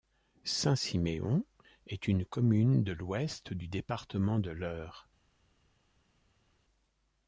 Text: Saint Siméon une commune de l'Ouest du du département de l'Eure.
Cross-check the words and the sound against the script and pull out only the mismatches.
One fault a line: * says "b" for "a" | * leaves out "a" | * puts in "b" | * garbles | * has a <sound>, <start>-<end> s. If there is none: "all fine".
* puts in "est"
* leaves out "du"